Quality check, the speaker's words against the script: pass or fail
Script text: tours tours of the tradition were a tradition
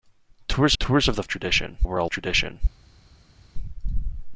pass